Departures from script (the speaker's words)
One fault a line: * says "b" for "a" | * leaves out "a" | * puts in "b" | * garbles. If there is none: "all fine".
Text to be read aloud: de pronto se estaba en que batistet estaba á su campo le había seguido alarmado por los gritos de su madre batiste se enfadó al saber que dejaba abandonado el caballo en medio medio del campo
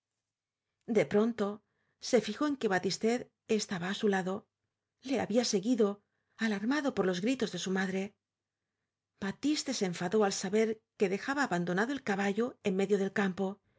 * says "fijó" for "estaba"
* says "lado" for "campo"
* leaves out "medio"